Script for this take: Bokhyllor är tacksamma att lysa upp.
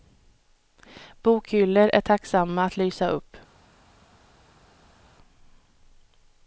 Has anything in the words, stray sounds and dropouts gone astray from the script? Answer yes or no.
no